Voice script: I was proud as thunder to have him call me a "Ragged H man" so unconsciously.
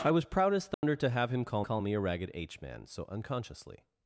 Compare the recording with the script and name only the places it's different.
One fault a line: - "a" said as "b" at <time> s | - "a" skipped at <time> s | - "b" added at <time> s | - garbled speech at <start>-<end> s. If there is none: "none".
- "call" added at 1.6 s